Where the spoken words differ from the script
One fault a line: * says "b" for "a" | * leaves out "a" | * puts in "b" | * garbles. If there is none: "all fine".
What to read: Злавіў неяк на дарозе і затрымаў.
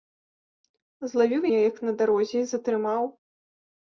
all fine